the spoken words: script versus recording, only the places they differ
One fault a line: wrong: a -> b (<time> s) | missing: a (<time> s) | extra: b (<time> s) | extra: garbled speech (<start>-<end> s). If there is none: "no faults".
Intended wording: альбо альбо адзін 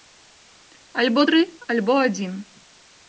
extra: тры (1.3 s)